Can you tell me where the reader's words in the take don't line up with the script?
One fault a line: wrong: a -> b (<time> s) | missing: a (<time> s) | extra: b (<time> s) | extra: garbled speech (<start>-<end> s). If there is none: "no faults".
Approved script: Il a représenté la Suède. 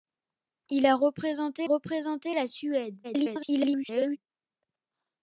extra: représenté (1.6 s)
extra: garbled speech (3.0-4.2 s)